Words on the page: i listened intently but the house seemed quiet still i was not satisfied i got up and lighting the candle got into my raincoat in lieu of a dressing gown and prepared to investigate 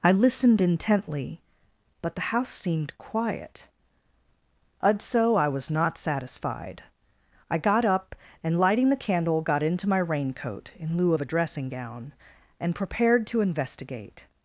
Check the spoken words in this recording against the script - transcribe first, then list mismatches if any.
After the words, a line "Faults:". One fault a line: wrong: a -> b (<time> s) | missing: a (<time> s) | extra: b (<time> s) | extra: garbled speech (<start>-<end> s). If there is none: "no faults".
i listened intently but the house seemed quiet udso i was not satisfied i got up and lighting the candle got into my raincoat in lieu of a dressing gown and prepared to investigate
Faults:
wrong: still -> udso (4.8 s)